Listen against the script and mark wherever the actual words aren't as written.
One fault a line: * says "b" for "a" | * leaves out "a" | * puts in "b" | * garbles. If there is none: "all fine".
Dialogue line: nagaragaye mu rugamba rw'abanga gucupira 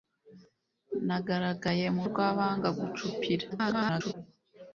* leaves out "rugamba"
* garbles